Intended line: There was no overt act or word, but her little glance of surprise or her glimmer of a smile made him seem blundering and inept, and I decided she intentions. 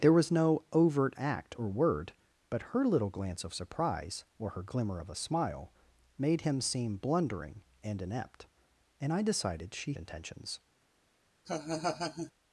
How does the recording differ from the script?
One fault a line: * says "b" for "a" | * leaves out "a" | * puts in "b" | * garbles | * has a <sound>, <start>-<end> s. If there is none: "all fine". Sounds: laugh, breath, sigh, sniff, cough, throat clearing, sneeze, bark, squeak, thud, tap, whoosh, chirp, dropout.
* has a laugh, 11.4-12.3 s